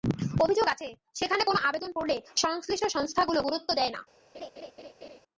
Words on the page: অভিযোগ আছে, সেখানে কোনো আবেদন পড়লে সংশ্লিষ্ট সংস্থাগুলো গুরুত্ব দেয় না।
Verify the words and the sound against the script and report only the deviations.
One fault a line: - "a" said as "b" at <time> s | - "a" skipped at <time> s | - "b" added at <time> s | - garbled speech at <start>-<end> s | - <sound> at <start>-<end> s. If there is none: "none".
- laugh at 4.3-5.2 s